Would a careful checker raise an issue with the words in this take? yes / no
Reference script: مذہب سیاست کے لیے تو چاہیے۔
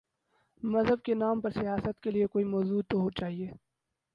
yes